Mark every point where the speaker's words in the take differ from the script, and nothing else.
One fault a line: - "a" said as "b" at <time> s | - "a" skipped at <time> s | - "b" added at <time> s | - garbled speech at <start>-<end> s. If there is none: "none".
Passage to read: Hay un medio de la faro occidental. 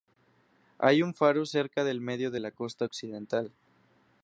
- "faro cerca del" added at 1.1 s
- "faro" said as "costa" at 2.5 s